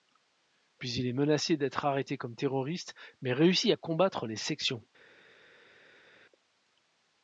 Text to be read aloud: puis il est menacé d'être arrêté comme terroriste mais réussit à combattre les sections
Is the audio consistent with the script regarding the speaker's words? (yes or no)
yes